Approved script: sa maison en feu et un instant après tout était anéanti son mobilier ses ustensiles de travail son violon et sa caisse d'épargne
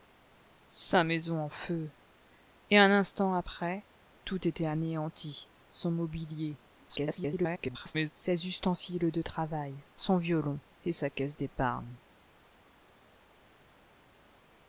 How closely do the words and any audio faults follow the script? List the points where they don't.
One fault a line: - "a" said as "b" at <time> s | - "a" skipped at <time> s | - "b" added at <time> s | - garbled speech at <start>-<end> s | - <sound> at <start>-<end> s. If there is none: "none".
- garbled speech at 6.9-8.1 s